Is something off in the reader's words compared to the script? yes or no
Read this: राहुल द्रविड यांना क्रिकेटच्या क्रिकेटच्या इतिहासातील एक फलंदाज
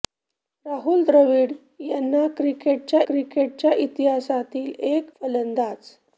no